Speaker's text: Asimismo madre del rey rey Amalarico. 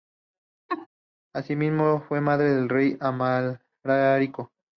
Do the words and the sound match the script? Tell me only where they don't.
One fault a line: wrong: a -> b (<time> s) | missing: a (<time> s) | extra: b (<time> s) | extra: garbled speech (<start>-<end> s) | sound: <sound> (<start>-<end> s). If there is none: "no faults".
sound: laugh (0.7-0.9 s)
extra: fue (2.1 s)
missing: rey (3.0 s)